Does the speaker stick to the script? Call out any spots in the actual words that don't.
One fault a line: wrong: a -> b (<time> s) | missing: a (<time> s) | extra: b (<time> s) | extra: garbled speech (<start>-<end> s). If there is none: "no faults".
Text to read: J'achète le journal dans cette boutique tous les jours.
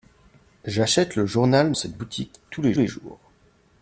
missing: dans (1.7 s)
extra: les (2.8 s)